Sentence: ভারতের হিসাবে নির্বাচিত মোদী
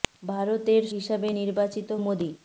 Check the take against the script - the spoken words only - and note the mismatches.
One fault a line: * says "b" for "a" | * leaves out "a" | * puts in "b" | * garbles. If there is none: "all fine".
all fine